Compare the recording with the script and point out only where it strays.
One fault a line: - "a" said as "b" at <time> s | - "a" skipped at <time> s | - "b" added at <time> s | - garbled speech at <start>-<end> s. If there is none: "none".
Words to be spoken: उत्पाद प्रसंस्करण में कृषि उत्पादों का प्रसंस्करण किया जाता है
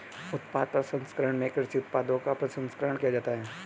none